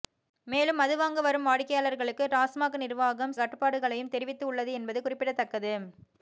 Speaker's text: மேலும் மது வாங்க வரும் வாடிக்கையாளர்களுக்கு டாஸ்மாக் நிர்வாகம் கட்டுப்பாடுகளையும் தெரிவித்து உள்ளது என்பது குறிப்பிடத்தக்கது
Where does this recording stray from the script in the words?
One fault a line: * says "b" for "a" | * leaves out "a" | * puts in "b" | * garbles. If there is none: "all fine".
all fine